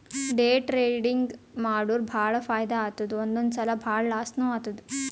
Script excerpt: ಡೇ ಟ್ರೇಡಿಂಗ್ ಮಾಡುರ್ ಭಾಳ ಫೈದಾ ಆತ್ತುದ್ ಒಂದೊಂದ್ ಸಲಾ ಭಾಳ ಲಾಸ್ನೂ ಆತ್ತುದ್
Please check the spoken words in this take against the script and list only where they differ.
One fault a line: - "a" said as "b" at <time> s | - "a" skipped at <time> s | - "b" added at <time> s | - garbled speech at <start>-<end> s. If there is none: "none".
none